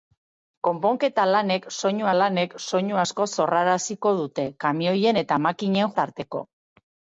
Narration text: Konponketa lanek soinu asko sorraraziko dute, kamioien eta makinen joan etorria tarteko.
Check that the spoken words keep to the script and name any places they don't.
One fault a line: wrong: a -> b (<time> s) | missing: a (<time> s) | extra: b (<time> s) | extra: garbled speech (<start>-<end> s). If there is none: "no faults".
extra: lanek soinu (2.2 s)
missing: joan etorria (5.9 s)